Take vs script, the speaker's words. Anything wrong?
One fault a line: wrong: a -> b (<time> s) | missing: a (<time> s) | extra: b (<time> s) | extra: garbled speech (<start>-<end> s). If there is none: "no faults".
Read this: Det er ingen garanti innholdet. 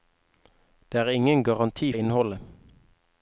no faults